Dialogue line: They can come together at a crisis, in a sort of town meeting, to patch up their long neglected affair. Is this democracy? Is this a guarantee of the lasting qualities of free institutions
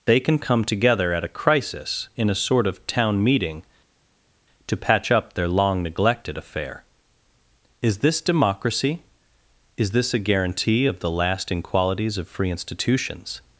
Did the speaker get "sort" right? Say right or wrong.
right